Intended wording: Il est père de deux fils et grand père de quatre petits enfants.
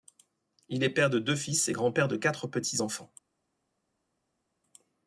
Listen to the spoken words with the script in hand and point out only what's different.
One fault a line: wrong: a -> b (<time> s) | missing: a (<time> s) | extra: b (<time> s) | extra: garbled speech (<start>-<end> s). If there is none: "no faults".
no faults